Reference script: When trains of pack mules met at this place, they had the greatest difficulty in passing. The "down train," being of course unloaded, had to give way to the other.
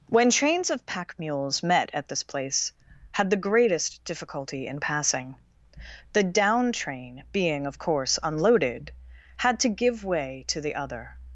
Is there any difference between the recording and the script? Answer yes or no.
yes